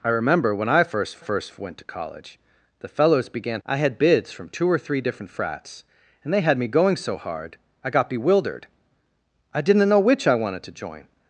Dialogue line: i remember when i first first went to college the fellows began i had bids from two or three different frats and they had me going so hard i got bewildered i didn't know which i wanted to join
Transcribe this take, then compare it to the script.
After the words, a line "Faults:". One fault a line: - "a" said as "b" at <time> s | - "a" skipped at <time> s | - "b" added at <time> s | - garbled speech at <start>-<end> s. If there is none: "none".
i remember when i first first went to college the fellows began i had bids from two or three different frats and they had me going so hard i got bewildered i didn't know which i wanted to join
Faults:
none